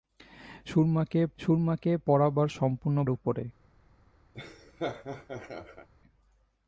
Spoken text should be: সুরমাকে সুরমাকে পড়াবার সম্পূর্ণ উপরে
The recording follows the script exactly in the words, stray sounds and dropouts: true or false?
false